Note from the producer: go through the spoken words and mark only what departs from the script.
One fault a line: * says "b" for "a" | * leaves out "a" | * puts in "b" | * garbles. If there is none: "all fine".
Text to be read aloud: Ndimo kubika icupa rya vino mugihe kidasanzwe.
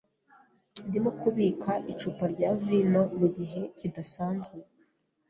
all fine